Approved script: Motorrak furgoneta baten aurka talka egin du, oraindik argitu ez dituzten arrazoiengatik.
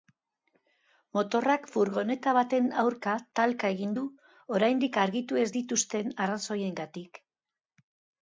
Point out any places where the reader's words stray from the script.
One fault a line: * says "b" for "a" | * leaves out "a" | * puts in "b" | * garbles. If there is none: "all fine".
all fine